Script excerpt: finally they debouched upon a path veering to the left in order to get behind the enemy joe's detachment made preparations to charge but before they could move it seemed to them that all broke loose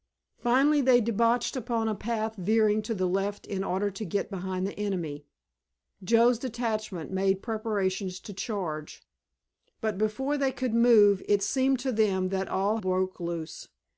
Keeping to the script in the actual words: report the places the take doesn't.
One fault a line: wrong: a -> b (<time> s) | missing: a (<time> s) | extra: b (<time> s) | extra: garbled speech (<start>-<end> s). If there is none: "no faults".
no faults